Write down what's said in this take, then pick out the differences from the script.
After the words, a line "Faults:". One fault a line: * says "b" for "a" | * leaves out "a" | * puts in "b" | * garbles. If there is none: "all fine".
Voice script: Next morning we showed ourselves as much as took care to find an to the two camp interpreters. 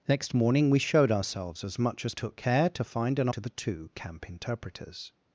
Next morning we showed ourselves as much as took care to find an to the two camp interpreters.
Faults:
all fine